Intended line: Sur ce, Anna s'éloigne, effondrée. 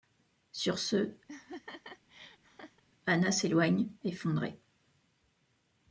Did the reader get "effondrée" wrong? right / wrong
right